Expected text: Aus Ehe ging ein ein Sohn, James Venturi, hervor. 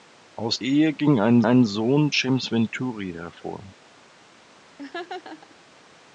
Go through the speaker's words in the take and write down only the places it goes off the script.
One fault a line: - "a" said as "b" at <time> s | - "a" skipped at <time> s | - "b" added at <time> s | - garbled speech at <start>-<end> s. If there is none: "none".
none